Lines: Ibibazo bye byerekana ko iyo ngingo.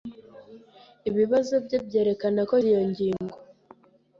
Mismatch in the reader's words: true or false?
false